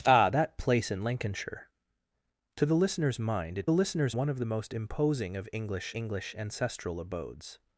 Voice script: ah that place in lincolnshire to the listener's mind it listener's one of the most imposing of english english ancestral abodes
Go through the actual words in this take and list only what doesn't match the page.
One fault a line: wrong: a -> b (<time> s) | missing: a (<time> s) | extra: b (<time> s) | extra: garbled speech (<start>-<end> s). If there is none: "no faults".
no faults